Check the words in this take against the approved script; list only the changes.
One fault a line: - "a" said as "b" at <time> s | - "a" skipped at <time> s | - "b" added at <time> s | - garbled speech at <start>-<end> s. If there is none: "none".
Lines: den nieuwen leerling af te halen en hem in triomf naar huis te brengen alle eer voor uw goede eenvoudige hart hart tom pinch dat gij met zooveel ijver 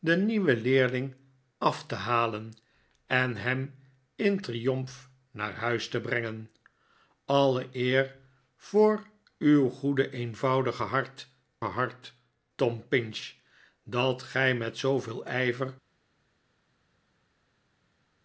none